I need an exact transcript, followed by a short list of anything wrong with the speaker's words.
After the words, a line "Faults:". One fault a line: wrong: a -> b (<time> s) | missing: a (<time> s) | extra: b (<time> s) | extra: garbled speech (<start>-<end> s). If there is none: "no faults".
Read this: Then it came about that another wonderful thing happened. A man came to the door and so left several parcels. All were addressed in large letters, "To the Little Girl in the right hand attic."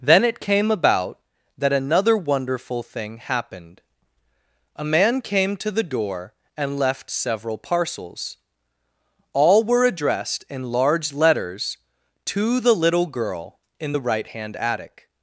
Then it came about that another wonderful thing happened. A man came to the door and left several parcels. All were addressed in large letters, "To the Little Girl in the right hand attic."
Faults:
missing: so (6.8 s)